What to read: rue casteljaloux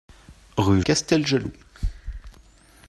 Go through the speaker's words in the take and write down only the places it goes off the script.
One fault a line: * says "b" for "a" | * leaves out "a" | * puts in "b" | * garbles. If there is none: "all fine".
all fine